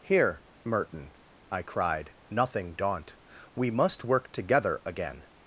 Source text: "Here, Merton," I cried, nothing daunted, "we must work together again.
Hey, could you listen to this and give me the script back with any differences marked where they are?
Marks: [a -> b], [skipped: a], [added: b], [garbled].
"Here, Merton," I cried, nothing [daunted, -> daunt] "we must work together again.